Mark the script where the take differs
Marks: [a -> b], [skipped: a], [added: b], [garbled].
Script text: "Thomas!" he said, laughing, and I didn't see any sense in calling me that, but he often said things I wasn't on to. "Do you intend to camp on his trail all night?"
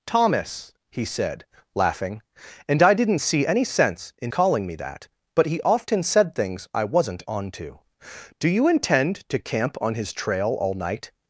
"Thomas!" he said, laughing, and I didn't see any sense in calling me that, but he often said things I wasn't on to. "Do you intend to camp on his trail all night?"